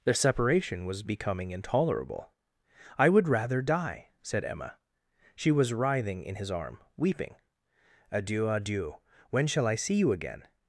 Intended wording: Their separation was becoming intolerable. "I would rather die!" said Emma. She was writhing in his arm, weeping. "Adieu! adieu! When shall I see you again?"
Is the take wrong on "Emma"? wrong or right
right